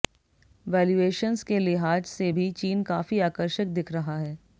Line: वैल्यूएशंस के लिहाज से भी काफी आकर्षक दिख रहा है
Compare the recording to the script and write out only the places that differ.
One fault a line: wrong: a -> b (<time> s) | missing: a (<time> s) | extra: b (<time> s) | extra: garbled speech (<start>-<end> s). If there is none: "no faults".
extra: चीन (2.5 s)